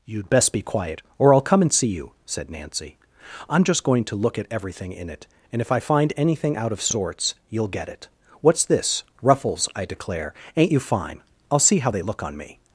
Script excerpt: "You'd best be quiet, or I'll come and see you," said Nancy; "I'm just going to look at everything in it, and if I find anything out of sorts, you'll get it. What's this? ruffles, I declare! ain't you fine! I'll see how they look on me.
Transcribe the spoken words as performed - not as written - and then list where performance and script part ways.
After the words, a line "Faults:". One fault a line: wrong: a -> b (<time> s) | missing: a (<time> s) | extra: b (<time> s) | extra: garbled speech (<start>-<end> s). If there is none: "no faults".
"You'd best be quiet, or I'll come and see you," said Nancy; "I'm just going to look at everything in it, and if I find anything out of sorts, you'll get it. What's this? ruffles, I declare! ain't you fine! I'll see how they look on me.
Faults:
no faults